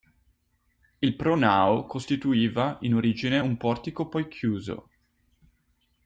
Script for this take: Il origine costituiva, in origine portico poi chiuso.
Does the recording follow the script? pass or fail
fail